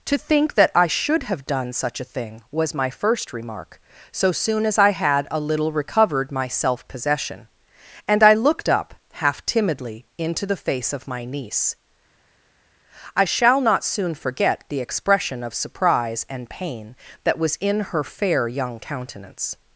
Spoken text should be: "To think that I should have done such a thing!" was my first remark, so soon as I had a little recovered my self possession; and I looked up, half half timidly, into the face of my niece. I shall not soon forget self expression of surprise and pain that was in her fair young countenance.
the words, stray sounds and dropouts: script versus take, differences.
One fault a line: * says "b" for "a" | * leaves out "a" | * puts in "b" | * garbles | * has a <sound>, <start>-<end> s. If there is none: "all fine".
* leaves out "half"
* says "the" for "self"